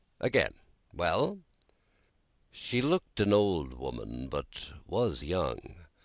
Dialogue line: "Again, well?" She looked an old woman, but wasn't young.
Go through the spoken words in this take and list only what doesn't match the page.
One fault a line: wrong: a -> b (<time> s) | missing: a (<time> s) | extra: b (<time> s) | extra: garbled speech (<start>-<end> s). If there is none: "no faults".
wrong: wasn't -> was (4.9 s)